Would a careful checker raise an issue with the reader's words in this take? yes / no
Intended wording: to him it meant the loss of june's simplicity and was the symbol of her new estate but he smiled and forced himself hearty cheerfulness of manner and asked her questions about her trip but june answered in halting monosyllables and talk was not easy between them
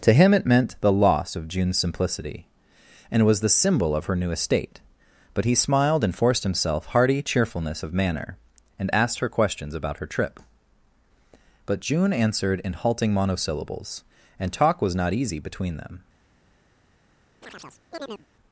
no